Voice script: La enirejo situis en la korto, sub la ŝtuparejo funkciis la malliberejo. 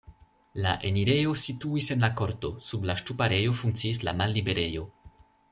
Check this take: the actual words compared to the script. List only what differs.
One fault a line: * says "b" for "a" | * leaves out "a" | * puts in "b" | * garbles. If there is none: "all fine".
all fine